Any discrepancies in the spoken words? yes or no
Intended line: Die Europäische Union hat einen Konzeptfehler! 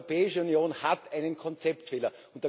no